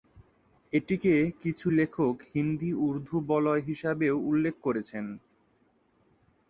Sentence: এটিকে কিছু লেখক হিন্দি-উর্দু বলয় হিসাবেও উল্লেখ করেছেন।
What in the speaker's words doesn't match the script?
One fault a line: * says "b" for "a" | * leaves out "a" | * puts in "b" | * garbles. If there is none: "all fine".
all fine